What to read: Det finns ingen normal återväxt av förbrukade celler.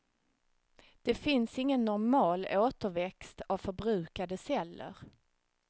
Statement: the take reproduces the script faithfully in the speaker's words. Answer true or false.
true